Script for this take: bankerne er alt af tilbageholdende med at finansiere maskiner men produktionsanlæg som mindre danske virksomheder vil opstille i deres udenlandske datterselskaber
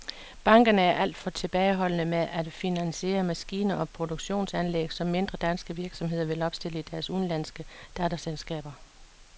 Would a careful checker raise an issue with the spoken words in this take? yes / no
yes